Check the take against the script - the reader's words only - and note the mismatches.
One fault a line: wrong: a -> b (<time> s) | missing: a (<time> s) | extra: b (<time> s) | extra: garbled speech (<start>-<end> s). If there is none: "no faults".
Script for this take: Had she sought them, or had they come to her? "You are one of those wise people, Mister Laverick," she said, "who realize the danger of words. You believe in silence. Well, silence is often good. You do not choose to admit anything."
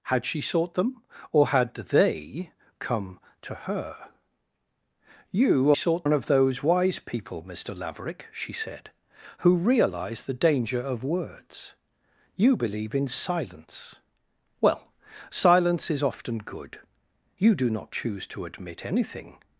wrong: are -> sought (5.7 s)